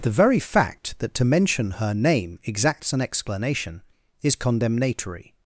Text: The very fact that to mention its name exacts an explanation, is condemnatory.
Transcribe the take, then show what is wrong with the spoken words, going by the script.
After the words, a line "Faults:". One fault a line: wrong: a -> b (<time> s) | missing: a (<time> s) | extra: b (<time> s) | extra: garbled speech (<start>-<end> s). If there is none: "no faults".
The very fact that to mention her name exacts an explanation, is condemnatory.
Faults:
wrong: its -> her (1.7 s)